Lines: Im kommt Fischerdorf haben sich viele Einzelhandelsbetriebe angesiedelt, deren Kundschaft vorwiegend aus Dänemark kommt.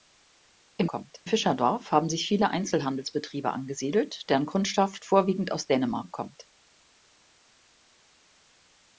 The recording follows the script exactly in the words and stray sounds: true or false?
true